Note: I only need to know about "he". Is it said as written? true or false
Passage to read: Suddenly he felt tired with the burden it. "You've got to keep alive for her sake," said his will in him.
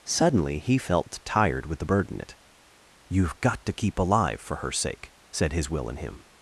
true